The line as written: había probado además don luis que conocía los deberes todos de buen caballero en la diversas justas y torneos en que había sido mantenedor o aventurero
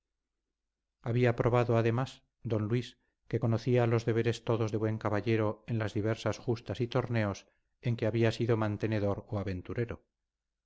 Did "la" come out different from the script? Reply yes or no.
yes